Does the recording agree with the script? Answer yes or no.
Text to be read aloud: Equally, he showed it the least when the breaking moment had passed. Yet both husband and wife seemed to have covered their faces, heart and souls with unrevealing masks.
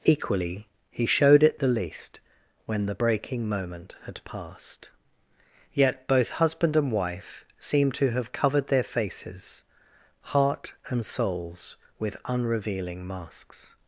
yes